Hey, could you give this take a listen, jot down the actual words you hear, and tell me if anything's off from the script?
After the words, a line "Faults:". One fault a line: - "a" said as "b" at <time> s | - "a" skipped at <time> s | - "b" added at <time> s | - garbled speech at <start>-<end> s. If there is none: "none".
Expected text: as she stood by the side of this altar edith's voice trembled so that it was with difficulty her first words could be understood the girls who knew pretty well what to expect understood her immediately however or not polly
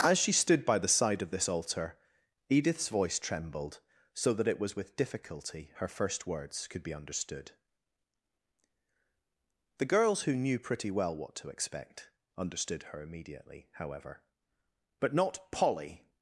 as she stood by the side of this altar edith's voice trembled so that it was with difficulty her first words could be understood the girls who knew pretty well what to expect understood her immediately however but not polly
Faults:
- "or" said as "but" at 15.0 s